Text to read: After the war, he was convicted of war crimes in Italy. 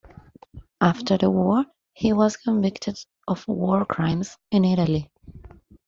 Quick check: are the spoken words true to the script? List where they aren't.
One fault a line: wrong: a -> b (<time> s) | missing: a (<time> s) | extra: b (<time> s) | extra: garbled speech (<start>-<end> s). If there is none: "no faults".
no faults